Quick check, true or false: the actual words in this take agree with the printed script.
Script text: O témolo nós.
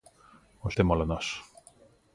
true